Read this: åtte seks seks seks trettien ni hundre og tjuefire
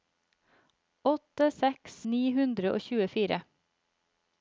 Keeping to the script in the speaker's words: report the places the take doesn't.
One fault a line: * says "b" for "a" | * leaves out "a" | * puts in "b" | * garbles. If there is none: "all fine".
* leaves out "seks seks trettien"